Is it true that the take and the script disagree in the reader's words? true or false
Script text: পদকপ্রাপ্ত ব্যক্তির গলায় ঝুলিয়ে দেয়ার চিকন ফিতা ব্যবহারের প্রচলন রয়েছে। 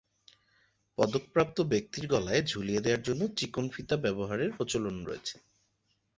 true